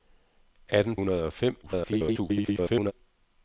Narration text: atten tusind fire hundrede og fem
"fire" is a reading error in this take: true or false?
true